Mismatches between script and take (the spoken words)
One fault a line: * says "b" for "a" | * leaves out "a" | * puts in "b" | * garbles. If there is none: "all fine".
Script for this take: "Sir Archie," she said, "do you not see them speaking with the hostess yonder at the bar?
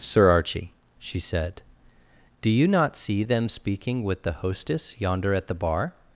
all fine